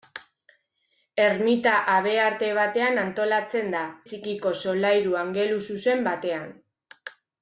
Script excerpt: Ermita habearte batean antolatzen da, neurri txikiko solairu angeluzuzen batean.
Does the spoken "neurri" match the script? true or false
false